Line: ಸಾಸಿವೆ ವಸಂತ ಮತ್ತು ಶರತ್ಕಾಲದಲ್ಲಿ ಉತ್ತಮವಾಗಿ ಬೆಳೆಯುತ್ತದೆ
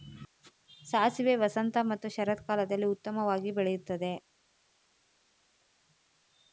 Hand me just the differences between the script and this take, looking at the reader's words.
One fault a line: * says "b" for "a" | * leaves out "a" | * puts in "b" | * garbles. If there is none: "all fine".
all fine